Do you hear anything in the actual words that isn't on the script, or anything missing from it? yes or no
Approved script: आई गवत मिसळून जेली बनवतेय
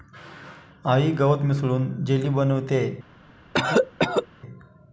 no